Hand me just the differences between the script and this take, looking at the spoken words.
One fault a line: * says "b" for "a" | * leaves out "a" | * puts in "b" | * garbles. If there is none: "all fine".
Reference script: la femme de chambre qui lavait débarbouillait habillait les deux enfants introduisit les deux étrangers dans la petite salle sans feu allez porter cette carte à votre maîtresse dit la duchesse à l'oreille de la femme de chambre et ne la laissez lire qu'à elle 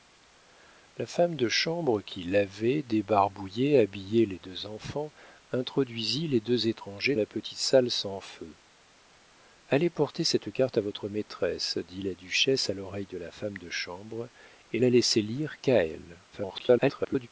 * leaves out "dans"
* leaves out "ne"
* garbles